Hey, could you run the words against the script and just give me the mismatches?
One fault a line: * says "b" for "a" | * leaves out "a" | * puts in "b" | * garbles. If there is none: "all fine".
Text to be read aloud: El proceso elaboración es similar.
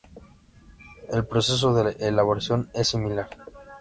* puts in "de"